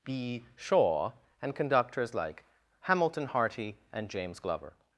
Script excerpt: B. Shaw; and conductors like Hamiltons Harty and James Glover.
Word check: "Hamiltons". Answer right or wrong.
wrong